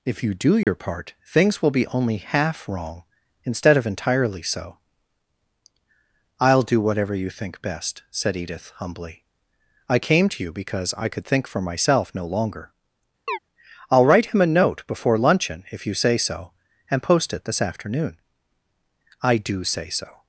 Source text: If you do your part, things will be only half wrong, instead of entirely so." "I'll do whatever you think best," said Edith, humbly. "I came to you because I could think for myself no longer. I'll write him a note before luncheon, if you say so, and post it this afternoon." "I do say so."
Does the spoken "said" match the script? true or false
true